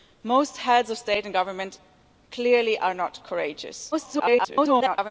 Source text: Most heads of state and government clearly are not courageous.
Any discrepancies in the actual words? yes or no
yes